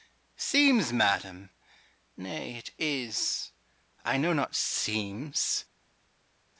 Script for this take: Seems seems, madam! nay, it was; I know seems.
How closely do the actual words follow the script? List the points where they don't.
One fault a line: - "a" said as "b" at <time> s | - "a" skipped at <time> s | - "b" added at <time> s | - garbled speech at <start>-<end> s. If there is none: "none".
- "seems" skipped at 0.9 s
- "was" said as "is" at 2.8 s
- "not" added at 4.3 s